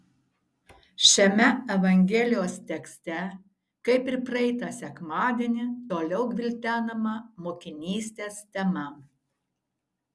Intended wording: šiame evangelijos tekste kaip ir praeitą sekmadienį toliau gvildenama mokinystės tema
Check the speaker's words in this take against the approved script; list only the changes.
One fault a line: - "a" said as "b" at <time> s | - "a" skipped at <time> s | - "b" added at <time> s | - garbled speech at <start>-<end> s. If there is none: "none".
none